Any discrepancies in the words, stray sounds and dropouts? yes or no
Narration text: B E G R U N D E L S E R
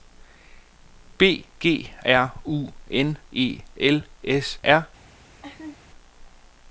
yes